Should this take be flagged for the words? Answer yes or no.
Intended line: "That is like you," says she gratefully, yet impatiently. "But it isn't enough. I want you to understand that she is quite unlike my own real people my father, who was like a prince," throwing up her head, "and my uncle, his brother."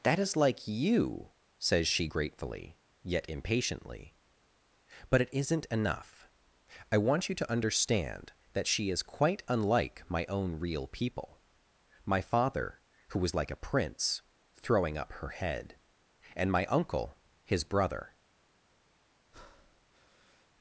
no